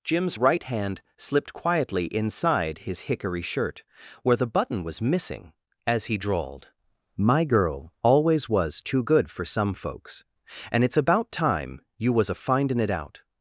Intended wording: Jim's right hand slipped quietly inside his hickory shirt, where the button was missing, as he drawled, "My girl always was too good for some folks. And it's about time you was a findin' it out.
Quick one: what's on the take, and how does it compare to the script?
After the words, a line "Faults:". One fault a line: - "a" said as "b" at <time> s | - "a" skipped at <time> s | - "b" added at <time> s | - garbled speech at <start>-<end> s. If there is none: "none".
Jim's right hand slipped quietly inside his hickory shirt, where the button was missing, as he drawled, "My girl always was too good for some folks. And it's about time you was a findin' it out.
Faults:
none